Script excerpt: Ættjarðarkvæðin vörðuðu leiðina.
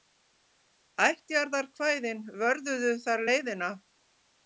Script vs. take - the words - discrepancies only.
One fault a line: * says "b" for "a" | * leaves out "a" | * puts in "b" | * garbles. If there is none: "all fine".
* puts in "þar"